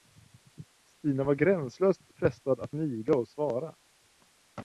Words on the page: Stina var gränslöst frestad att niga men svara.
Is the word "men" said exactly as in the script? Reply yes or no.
no